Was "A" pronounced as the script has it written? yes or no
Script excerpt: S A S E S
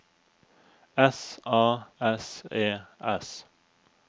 yes